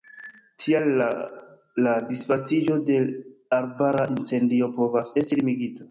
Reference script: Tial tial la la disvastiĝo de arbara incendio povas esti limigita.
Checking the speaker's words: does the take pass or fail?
fail